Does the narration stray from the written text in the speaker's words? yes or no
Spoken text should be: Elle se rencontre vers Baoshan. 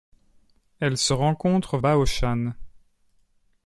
yes